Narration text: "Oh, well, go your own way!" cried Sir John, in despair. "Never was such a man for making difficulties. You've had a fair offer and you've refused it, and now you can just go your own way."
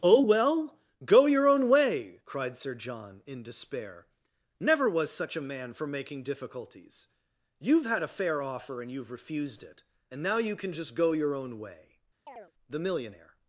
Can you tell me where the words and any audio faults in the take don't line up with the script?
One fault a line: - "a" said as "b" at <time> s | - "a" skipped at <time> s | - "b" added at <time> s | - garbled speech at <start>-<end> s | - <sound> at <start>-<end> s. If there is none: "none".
- chirp at 12.3-12.5 s
- "The millionaire" added at 12.7 s